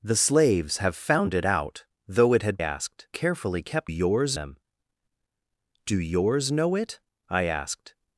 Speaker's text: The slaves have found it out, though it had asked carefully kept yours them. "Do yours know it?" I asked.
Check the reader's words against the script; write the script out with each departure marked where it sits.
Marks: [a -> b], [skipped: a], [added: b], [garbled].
The slaves have found it out, though it had asked carefully kept yours them. "Do yours know it?" I asked.